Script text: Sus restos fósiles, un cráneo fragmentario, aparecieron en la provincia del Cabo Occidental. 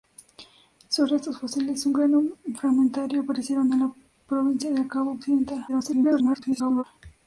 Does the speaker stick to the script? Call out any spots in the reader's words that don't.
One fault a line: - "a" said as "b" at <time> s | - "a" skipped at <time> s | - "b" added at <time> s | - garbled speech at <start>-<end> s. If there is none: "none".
- garbled speech at 5.7-6.8 s